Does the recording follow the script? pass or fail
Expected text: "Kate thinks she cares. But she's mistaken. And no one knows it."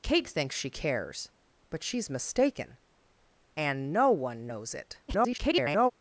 fail